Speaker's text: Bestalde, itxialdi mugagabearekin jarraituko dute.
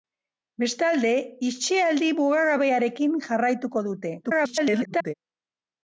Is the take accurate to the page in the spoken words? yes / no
no